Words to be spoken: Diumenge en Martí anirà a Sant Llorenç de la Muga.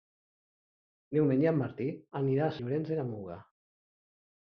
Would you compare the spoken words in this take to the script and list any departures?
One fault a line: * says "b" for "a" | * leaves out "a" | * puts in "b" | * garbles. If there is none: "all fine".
* leaves out "Sant"